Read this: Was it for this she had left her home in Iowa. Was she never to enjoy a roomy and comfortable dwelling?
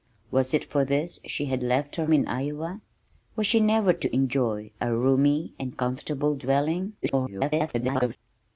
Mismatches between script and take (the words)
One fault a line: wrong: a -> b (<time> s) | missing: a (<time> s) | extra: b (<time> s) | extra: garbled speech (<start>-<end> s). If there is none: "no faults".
missing: home (2.1 s)
extra: garbled speech (7.0-8.2 s)